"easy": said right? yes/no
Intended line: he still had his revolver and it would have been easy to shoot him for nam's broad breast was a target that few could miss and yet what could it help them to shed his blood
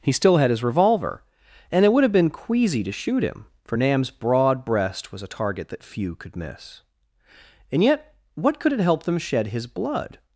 no